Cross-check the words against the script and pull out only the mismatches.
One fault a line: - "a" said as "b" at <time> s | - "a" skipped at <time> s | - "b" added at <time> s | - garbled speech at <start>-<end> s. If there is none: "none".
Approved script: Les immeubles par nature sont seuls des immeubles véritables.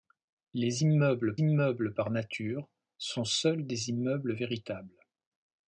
- "immeubles" added at 1.4 s